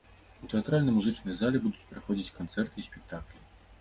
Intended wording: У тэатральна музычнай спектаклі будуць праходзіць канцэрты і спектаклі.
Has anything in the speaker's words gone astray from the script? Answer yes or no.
yes